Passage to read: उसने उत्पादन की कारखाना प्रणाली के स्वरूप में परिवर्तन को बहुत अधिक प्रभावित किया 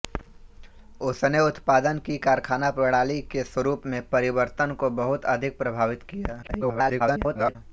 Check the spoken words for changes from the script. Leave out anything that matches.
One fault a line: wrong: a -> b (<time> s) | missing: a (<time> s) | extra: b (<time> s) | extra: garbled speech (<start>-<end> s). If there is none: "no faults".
extra: garbled speech (6.4-7.6 s)